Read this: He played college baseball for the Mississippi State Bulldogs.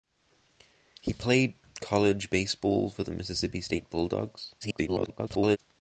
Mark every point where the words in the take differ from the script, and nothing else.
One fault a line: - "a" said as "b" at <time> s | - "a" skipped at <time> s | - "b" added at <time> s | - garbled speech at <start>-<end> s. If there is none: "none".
- garbled speech at 4.6-5.6 s